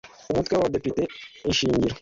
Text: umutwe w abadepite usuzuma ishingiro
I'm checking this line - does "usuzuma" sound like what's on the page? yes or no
no